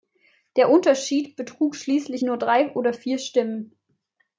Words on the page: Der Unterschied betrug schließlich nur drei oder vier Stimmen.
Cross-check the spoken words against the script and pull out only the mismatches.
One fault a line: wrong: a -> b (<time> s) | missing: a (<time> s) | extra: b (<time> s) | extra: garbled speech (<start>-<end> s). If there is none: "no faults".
no faults